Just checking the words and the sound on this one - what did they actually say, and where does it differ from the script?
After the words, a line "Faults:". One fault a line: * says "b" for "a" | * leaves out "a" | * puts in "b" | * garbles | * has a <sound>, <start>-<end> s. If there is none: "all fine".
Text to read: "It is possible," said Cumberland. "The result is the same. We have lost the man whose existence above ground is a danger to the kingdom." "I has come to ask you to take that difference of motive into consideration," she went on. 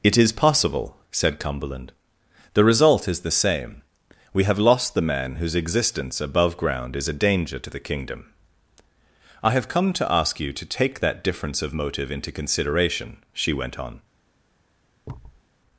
"It is possible," said Cumberland. "The result is the same. We have lost the man whose existence above ground is a danger to the kingdom." "I have come to ask you to take that difference of motive into consideration," she went on.
Faults:
* says "have" for "has"
* has a thud, 15.0-15.4 s